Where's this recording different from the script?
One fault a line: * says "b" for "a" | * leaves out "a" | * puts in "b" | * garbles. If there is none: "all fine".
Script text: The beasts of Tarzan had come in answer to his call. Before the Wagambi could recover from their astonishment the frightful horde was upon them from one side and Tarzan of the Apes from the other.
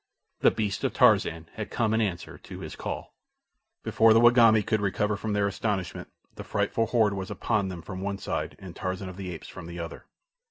all fine